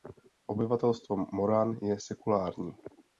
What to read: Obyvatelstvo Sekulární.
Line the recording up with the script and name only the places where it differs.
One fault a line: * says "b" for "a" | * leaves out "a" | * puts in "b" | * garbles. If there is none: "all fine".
* puts in "Moran je"